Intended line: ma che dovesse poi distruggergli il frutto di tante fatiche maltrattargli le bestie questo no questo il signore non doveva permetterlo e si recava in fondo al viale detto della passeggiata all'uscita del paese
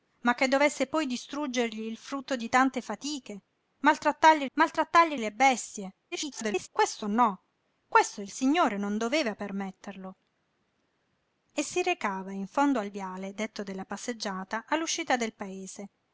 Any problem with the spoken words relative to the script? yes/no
yes